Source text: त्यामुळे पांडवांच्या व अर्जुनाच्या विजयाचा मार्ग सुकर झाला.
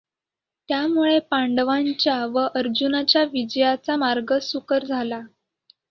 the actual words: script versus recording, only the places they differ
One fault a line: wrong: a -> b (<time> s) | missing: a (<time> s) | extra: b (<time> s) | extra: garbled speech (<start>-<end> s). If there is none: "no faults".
no faults